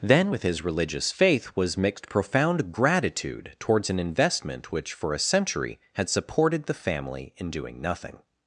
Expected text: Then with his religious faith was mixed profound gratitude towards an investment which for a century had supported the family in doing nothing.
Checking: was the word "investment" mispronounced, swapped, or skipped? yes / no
no